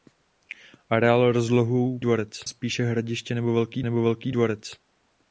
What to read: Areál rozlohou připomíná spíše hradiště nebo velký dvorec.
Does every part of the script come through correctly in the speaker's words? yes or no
no